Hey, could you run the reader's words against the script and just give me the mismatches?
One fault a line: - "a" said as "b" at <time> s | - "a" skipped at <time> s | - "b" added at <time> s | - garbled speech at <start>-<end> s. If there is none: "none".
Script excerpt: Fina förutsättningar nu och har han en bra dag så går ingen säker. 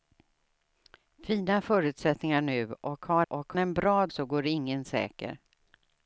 - "han" said as "och" at 3.2 s
- "dag" skipped at 4.1 s